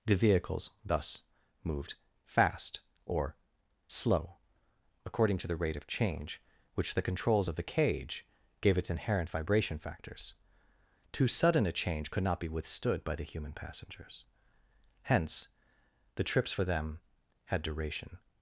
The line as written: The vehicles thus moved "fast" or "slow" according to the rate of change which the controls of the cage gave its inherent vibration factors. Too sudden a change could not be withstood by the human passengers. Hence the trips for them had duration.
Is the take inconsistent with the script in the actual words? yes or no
no